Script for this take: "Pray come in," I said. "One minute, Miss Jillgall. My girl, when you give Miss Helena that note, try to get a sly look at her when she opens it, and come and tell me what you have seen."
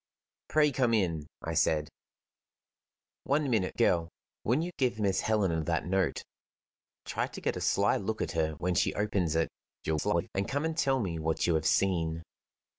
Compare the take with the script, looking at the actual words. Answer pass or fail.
fail